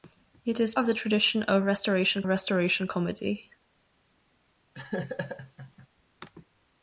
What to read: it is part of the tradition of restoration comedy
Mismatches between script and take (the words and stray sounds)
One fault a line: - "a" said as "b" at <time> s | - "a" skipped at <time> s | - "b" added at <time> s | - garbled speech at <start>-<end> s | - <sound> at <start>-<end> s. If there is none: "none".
- "part" skipped at 0.7 s
- "restoration" added at 2.3 s
- laugh at 4.7-5.9 s